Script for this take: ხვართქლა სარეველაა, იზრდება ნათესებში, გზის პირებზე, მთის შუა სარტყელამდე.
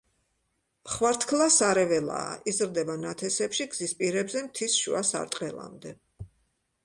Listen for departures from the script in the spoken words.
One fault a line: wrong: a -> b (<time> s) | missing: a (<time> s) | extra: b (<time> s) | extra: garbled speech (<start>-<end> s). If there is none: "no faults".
no faults